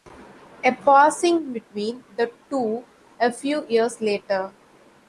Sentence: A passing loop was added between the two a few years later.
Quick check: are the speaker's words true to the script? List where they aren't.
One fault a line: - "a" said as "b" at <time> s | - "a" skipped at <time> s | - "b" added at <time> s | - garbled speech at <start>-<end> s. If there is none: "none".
- "loop was added" skipped at 1.5 s